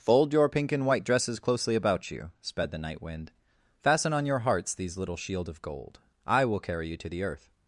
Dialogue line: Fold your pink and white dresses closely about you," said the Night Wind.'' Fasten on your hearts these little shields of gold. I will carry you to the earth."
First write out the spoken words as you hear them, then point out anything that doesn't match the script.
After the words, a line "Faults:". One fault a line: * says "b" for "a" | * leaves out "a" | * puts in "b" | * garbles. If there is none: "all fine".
Fold your pink and white dresses closely about you," sped the Night Wind.'' Fasten on your hearts these little shield of gold. I will carry you to the earth."
Faults:
* says "sped" for "said"
* says "shield" for "shields"